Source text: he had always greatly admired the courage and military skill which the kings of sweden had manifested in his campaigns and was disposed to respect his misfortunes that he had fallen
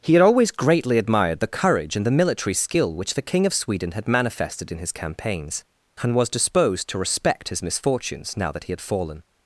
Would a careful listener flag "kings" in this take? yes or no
yes